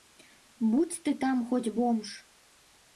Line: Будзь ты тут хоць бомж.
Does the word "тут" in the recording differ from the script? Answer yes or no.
yes